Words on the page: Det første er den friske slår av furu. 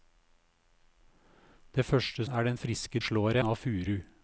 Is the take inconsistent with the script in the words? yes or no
no